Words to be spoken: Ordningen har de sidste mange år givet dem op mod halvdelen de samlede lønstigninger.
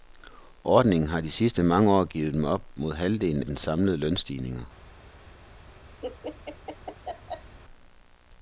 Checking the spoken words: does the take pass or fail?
pass